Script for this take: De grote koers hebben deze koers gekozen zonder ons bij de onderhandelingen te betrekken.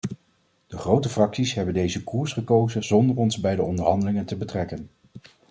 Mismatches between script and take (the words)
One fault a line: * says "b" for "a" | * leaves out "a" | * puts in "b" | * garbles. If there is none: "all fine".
* says "fracties" for "koers"